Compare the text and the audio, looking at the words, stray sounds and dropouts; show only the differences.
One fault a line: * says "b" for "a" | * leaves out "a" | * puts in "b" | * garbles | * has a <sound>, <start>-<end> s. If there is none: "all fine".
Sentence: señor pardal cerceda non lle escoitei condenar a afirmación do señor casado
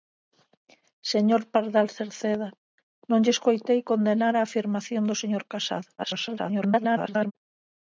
* garbles